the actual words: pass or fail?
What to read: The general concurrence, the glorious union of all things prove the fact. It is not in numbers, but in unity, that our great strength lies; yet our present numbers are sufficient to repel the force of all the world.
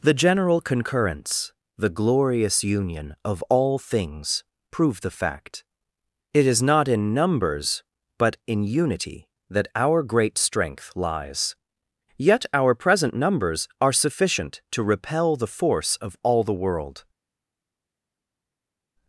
pass